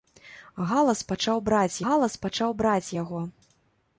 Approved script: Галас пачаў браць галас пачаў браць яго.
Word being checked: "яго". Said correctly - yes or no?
yes